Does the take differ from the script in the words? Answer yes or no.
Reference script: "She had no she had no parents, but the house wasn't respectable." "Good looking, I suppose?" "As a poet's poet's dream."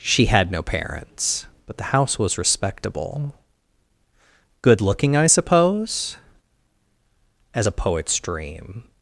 yes